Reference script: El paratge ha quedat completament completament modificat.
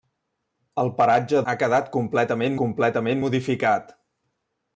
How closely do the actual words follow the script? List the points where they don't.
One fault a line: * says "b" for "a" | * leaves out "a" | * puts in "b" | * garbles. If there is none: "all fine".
all fine